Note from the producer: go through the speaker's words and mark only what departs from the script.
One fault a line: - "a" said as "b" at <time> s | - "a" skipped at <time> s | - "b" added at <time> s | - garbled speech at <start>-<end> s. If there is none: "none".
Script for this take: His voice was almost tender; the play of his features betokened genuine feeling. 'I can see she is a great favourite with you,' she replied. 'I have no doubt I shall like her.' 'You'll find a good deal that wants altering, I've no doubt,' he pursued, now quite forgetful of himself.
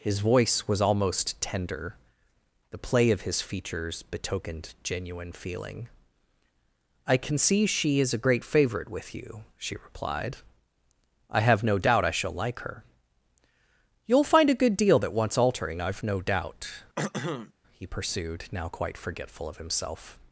none